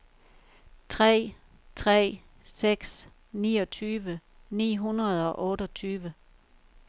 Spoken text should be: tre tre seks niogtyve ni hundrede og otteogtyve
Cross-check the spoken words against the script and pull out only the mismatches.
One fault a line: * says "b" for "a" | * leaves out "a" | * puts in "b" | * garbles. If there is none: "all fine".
all fine